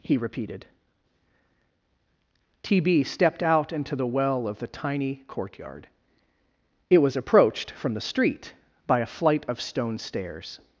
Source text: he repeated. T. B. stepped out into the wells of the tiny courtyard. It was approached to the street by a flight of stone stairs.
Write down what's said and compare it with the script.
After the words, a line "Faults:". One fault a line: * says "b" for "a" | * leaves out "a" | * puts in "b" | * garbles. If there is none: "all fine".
he repeated. T. B. stepped out into the well of the tiny courtyard. It was approached from the street by a flight of stone stairs.
Faults:
* says "well" for "wells"
* says "from" for "to"